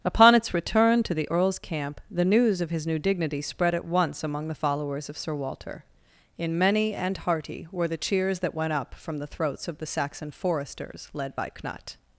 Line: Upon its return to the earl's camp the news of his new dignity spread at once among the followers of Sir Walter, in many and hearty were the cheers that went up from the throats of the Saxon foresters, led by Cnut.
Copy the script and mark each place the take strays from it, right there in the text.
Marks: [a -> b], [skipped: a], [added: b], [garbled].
Upon its return to the earl's camp the news of his new dignity spread at once among the followers of Sir Walter, in many and hearty were the cheers that went up from the throats of the Saxon foresters, led by Cnut.